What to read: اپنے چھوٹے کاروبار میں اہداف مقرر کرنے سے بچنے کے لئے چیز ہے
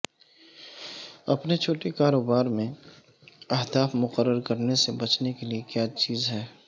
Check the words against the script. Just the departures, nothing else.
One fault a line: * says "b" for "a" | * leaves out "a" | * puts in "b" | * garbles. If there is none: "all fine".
* puts in "کیا"